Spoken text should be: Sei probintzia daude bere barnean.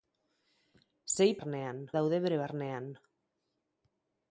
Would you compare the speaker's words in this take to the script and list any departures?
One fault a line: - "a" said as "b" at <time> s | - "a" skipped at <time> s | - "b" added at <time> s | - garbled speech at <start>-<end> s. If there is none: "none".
- "probintzia" said as "barnean" at 1.4 s